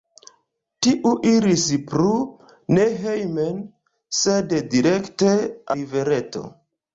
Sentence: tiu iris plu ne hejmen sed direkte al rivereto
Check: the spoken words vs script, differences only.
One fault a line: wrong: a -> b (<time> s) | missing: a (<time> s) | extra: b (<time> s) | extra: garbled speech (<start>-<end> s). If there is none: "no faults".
missing: al (5.4 s)